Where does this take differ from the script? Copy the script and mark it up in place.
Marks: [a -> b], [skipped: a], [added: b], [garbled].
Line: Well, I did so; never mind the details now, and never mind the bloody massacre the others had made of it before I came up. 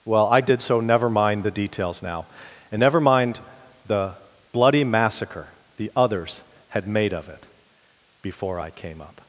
Well, I did so; never mind the details now, and never mind the bloody massacre the others had made of it before I came up.